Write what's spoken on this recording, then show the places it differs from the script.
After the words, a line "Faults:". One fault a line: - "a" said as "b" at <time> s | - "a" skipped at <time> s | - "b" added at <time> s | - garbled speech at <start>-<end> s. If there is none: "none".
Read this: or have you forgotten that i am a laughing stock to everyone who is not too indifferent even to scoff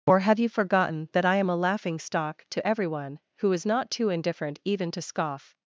or have you forgotten that i am a laughing stock to everyone who is not too indifferent even to scoff
Faults:
none